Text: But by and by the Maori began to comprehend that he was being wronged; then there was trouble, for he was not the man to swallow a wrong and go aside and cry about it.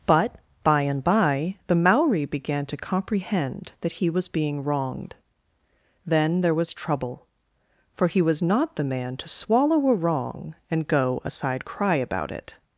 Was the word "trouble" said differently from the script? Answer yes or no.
no